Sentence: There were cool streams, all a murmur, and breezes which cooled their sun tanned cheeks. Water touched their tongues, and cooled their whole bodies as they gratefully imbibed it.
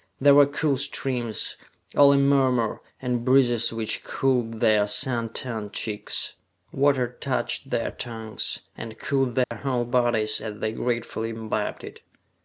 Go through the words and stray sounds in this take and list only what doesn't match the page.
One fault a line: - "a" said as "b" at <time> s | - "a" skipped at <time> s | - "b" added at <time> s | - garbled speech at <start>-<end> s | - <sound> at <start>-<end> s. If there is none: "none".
- dropout at 9.4-9.5 s